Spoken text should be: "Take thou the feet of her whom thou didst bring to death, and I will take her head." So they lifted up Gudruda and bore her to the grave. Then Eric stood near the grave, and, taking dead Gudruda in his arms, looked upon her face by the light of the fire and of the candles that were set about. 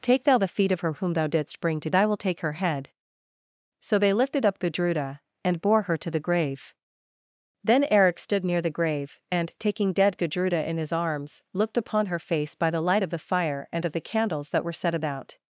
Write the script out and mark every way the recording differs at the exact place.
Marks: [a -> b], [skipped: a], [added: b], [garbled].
"Take thou the feet of her whom thou didst bring to [skipped: death, and] I will take her head." So they lifted up Gudruda and bore her to the grave. Then Eric stood near the grave, and, taking dead Gudruda in his arms, looked upon her face by the light of the fire and of the candles that were set about.